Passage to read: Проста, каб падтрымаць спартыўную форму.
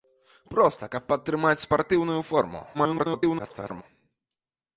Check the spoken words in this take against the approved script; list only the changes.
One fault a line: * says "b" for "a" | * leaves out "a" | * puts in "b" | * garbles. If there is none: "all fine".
* garbles